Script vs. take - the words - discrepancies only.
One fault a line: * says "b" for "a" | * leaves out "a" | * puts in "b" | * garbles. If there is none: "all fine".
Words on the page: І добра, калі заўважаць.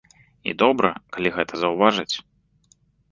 * puts in "гэта"